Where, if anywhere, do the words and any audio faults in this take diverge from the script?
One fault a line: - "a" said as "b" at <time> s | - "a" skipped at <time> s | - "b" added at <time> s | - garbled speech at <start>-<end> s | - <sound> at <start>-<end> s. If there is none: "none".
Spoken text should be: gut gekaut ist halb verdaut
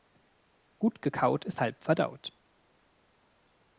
none